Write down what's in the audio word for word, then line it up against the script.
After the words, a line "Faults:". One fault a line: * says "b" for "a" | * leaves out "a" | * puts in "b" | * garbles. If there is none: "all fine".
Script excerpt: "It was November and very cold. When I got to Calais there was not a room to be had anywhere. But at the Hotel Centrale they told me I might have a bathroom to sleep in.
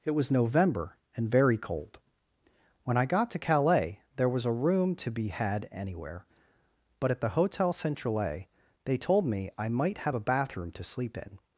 "It was November and very cold. When I got to Calais there was a room to be had anywhere. But at the Hotel Centrale they told me I might have a bathroom to sleep in.
Faults:
* leaves out "not"